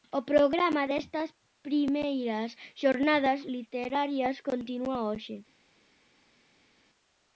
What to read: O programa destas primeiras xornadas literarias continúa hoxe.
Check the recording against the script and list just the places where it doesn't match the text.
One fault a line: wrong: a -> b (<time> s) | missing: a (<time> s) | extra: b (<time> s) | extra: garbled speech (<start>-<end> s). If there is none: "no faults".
no faults